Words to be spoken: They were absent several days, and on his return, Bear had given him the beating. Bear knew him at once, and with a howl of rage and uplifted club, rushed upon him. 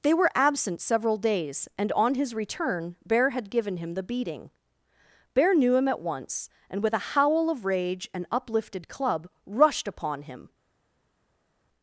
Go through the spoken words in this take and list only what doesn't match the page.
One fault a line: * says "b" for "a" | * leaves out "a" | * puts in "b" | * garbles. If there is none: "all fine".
all fine